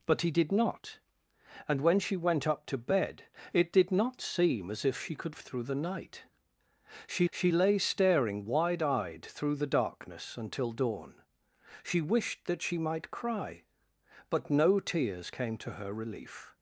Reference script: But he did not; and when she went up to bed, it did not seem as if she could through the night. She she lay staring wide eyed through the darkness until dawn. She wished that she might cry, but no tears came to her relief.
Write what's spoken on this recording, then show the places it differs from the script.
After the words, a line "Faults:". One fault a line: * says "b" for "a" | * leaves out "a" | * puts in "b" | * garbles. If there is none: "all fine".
But he did not; and when she went up to bed, it did not seem as if she could through the night. She she lay staring wide eyed through the darkness until dawn. She wished that she might cry, but no tears came to her relief.
Faults:
all fine